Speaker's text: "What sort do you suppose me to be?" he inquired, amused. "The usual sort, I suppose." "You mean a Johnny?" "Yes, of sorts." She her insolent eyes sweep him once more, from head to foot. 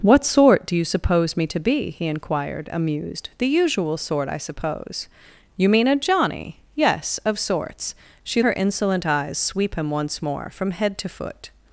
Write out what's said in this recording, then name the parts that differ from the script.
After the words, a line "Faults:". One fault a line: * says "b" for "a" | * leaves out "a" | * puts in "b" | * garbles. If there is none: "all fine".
"What sort do you suppose me to be?" he inquired, amused. "The usual sort, I suppose." "You mean a Johnny?" "Yes, of sorts." She her insolent eyes sweep him once more, from head to foot.
Faults:
all fine